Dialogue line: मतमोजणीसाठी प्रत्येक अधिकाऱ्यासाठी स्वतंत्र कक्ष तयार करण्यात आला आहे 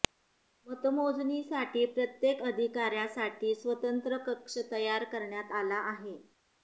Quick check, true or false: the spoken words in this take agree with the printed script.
true